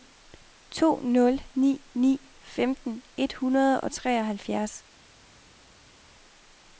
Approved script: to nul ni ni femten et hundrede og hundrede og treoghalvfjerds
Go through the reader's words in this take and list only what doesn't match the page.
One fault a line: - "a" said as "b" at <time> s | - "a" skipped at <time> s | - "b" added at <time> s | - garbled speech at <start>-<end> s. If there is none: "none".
- "hundrede og" skipped at 3.9 s